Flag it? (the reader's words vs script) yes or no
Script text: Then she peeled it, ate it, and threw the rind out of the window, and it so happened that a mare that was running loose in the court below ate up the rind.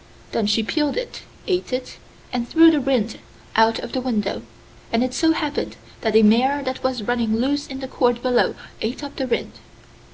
no